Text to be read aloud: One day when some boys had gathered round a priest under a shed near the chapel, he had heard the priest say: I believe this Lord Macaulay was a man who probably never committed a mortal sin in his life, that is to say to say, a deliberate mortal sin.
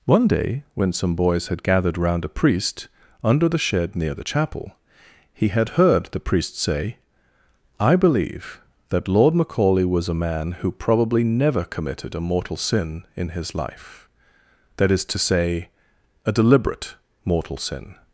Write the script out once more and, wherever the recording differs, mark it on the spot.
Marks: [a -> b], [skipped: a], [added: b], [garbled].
One day when some boys had gathered round a priest under [a -> the] shed near the chapel, he had heard the priest say: I believe [this -> that] Lord Macaulay was a man who probably never committed a mortal sin in his life, that is to say [skipped: to say,] a deliberate mortal sin.